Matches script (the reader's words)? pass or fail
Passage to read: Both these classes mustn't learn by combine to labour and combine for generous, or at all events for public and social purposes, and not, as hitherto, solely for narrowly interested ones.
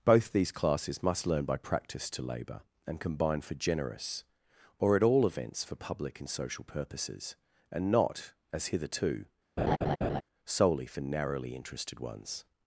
fail